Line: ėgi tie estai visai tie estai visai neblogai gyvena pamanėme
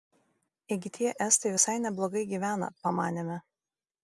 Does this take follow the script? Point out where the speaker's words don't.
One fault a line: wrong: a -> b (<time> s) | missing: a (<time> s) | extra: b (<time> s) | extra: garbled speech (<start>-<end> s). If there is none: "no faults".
missing: tie estai visai (1.8 s)